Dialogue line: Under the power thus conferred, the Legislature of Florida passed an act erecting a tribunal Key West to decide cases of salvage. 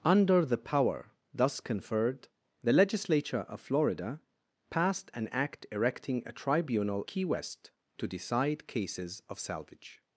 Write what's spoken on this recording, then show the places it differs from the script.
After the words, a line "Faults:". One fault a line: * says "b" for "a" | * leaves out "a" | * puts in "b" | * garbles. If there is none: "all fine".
Under the power thus conferred, the Legislature of Florida passed an act erecting a tribunal Key West to decide cases of salvage.
Faults:
all fine